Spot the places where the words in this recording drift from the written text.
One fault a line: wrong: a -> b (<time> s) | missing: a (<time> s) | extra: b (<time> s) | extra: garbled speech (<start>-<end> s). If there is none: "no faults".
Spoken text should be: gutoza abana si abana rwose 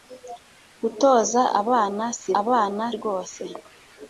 no faults